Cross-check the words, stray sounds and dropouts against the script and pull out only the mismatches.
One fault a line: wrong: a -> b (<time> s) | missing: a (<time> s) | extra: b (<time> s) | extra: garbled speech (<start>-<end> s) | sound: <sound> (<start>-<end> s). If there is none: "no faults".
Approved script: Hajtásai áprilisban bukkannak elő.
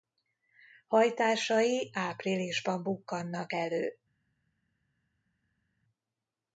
no faults